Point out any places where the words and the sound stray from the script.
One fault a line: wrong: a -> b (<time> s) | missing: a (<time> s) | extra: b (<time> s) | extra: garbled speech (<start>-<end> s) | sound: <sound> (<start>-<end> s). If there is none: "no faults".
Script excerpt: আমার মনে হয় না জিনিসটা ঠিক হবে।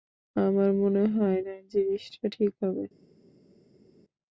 no faults